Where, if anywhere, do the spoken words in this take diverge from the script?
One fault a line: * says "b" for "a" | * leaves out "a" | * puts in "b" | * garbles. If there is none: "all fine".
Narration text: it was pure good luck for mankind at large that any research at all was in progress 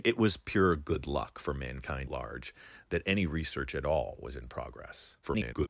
* leaves out "at"
* garbles